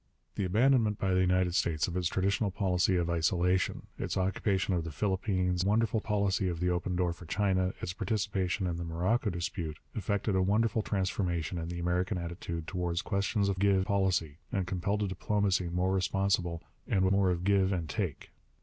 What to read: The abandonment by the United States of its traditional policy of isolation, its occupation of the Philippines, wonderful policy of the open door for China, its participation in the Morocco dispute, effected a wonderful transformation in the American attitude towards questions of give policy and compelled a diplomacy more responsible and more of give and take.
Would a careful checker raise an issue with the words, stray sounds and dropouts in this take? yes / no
no